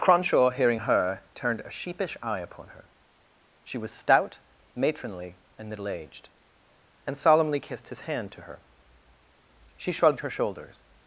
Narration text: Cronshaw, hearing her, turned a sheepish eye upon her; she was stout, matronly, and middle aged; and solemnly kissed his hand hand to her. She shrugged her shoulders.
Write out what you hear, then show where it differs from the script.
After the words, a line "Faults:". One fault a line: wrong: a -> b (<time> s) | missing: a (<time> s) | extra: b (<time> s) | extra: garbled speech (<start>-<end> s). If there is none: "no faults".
Cronshaw, hearing her, turned a sheepish eye upon her; she was stout, matronly, and middle aged; and solemnly kissed his hand to her. She shrugged her shoulders.
Faults:
missing: hand (8.3 s)